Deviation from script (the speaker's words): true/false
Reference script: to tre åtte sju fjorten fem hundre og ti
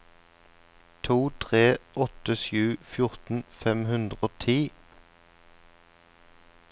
false